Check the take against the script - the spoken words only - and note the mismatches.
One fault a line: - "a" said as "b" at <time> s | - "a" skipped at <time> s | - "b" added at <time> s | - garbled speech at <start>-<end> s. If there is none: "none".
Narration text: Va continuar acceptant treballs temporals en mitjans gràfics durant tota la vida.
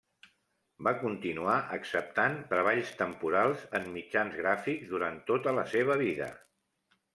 - "seva" added at 5.8 s